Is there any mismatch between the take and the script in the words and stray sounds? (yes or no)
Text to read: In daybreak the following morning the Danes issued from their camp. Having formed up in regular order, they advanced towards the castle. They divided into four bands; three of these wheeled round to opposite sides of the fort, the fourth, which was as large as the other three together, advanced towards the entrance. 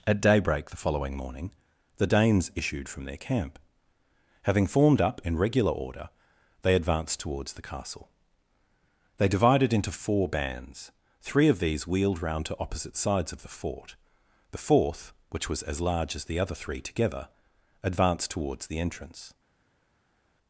yes